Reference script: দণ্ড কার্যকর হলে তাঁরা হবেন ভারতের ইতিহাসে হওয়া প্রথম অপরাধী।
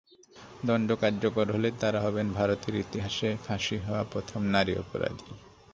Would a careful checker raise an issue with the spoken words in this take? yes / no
yes